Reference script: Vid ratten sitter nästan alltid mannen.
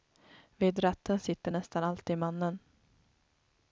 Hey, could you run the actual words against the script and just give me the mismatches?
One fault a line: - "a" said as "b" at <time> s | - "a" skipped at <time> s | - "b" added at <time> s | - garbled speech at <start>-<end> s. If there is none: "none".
none